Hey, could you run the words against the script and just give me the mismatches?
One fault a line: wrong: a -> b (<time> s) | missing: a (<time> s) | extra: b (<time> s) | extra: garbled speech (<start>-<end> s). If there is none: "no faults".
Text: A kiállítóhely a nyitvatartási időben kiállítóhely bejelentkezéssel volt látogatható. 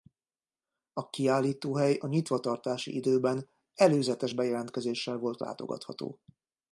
wrong: kiállítóhely -> előzetes (3.7 s)